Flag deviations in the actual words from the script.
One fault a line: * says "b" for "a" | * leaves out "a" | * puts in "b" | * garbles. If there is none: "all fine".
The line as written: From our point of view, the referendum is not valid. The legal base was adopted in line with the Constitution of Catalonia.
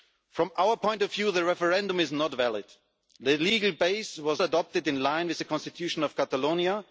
all fine